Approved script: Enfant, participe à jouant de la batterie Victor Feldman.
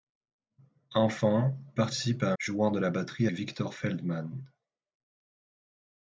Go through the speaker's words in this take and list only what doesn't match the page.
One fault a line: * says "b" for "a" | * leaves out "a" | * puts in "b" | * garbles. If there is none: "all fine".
all fine